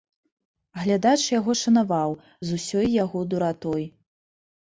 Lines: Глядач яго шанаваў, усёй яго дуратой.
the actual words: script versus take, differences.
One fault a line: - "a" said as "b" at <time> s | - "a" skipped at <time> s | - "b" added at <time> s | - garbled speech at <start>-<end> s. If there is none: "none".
- "з" added at 2.5 s